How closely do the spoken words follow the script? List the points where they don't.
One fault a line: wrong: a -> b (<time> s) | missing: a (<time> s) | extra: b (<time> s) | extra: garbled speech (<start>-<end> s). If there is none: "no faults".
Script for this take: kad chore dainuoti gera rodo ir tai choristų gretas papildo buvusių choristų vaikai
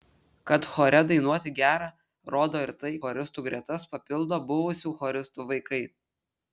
no faults